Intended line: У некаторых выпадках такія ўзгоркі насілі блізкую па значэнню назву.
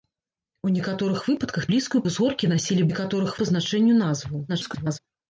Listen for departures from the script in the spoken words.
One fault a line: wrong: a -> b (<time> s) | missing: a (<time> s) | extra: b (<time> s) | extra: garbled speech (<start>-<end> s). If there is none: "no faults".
wrong: такія -> блізкую (1.7 s)
wrong: блізкую -> некаторых (2.9 s)
extra: garbled speech (4.5-5.0 s)